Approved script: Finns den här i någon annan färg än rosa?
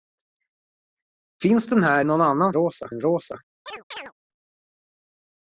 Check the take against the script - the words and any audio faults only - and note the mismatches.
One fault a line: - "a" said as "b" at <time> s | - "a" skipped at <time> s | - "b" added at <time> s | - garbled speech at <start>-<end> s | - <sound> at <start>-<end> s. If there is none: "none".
- "i" skipped at 2.0 s
- "färg" said as "rosa" at 2.5 s
- chirp at 3.7-4.1 s